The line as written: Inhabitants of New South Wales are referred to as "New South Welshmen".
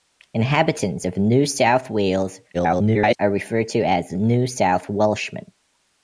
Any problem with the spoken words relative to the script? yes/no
yes